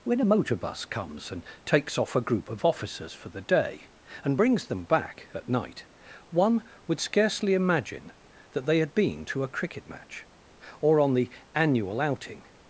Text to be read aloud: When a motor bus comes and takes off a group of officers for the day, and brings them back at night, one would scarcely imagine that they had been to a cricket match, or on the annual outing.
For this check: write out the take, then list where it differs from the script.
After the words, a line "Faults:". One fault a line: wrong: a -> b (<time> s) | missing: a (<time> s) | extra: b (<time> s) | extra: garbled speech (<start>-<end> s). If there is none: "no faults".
When a motor bus comes and takes off a group of officers for the day, and brings them back at night, one would scarcely imagine that they had been to a cricket match, or on the annual outing.
Faults:
no faults